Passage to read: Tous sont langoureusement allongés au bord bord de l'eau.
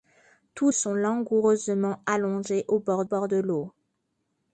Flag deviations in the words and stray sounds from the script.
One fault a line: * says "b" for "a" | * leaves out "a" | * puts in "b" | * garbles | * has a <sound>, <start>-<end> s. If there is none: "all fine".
all fine